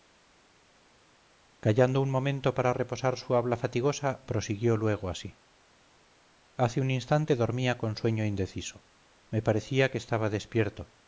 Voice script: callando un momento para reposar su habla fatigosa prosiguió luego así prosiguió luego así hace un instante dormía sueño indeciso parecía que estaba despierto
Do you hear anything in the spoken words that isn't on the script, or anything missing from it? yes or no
yes